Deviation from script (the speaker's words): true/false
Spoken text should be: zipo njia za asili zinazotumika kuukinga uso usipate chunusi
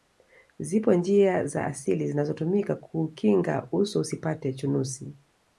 false